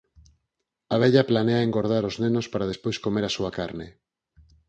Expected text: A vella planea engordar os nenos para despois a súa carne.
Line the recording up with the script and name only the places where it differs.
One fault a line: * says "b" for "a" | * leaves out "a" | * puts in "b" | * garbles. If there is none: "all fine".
* puts in "comer"